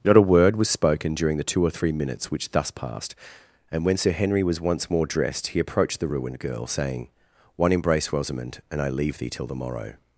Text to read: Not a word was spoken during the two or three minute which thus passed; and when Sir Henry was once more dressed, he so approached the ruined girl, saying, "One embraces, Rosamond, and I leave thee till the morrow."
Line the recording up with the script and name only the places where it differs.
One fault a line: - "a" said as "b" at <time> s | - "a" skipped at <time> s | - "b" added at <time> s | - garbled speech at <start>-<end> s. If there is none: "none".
- "minute" said as "minutes" at 1.9 s
- "so" skipped at 5.6 s
- "embraces" said as "embrace" at 7.7 s